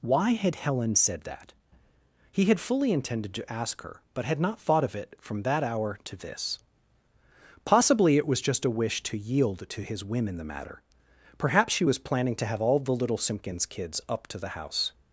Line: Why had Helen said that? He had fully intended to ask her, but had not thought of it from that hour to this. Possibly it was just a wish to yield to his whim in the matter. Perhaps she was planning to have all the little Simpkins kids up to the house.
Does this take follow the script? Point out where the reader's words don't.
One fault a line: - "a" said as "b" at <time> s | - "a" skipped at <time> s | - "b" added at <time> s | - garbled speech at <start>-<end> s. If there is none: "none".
none